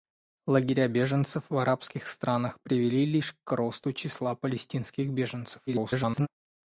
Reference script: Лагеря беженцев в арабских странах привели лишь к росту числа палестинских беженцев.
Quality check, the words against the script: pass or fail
fail